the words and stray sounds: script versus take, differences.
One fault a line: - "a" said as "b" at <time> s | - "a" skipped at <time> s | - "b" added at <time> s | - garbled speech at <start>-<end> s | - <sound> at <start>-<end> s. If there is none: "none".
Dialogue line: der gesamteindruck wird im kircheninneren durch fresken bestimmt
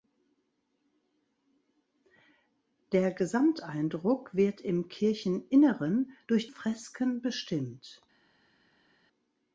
none